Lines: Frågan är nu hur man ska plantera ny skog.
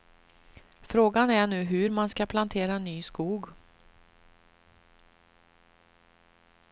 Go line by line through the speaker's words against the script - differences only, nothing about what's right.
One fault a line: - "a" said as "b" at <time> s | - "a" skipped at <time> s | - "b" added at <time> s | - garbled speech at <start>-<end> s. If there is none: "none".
none